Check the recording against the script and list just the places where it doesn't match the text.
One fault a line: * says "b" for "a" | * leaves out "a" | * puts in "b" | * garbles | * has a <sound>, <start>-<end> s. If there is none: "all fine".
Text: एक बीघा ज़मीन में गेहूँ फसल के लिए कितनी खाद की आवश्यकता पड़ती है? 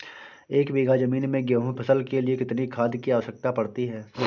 all fine